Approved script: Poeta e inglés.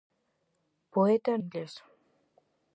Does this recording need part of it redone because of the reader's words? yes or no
no